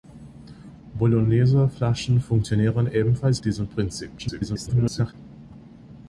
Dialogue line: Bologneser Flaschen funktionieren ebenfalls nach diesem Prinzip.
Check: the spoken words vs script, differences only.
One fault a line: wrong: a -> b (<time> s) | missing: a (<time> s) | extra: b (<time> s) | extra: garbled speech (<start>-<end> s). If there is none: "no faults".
missing: nach (3.4 s)
extra: garbled speech (4.2-5.1 s)